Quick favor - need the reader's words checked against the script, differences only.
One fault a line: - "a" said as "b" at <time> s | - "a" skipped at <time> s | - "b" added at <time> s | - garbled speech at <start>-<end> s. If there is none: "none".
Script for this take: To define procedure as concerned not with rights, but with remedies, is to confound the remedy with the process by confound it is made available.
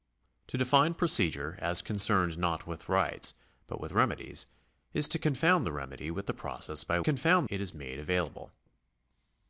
none